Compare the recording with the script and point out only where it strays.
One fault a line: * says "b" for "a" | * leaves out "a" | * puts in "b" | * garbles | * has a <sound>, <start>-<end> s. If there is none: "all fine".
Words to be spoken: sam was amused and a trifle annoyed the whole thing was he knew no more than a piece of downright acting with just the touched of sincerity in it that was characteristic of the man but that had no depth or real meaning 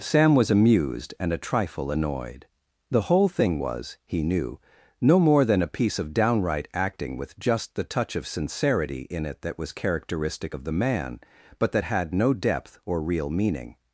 * says "touch" for "touched"